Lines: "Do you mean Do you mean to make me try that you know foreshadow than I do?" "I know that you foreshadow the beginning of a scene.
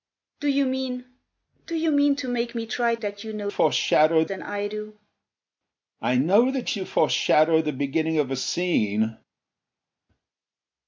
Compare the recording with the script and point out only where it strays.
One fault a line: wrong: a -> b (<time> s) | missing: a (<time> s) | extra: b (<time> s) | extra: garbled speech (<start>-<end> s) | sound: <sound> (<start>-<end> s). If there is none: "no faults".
no faults